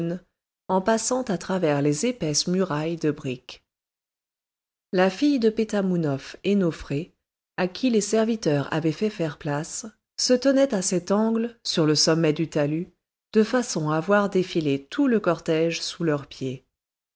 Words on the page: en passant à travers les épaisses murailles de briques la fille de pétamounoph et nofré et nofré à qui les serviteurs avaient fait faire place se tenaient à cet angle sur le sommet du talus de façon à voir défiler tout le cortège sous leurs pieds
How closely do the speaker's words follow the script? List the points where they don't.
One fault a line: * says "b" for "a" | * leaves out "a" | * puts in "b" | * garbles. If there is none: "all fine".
* leaves out "et nofré"